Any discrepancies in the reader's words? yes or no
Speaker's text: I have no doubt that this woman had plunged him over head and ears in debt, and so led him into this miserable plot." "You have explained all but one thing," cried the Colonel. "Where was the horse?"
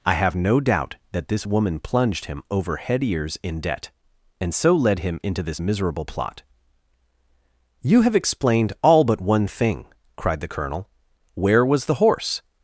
yes